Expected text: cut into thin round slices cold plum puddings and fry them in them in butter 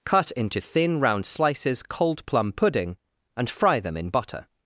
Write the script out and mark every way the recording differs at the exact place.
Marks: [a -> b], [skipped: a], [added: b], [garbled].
cut into thin round slices cold plum [puddings -> pudding] and fry them in [skipped: them in] butter